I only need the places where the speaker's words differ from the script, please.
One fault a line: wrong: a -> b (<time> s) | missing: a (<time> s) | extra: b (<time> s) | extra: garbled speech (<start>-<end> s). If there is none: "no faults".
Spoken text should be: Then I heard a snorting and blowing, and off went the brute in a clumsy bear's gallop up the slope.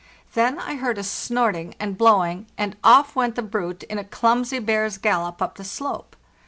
no faults